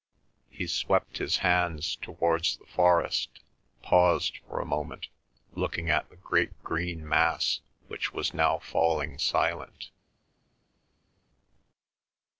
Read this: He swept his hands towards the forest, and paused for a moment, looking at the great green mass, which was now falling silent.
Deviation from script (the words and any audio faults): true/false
true